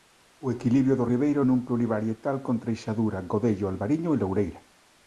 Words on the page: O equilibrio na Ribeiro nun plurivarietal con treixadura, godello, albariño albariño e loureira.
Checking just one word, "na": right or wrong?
wrong